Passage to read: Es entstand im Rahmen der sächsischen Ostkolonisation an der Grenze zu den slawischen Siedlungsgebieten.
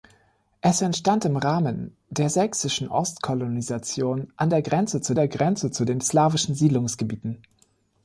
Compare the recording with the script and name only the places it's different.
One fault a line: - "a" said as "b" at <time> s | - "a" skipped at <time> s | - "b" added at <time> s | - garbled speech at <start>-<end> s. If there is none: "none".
- "der Grenze zu" added at 5.1 s